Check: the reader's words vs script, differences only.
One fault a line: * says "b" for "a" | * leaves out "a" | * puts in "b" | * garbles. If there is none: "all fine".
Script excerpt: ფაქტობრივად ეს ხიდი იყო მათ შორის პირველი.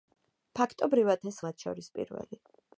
* leaves out "ხიდი იყო"